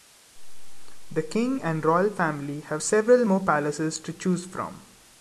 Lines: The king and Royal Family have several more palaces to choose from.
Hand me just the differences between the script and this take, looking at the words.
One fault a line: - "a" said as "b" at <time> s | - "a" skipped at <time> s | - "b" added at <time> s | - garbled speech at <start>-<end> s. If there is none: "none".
none